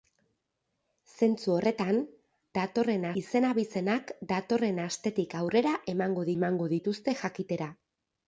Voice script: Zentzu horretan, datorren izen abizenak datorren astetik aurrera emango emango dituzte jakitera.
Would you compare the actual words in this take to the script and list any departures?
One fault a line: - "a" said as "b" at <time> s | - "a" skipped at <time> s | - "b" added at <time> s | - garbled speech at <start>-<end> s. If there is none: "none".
none